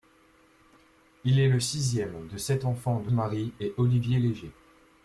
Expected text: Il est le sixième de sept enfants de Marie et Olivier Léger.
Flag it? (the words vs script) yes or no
no